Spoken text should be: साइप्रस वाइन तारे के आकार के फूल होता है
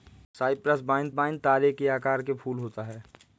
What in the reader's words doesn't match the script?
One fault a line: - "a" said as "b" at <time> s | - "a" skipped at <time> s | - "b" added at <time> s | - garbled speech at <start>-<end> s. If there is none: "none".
- "वाइन" added at 1.1 s